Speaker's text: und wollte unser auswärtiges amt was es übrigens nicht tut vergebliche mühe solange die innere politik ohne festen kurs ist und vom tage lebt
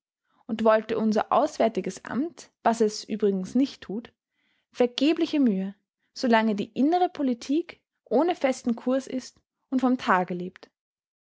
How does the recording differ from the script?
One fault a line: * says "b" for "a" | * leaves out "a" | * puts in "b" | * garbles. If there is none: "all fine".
all fine